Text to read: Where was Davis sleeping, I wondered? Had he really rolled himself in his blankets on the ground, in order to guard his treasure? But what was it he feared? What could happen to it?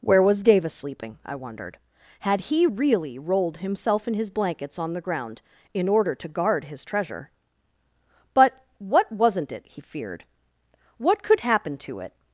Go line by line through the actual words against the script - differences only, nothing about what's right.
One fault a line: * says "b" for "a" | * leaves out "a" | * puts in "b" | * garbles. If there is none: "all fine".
* says "wasn't" for "was"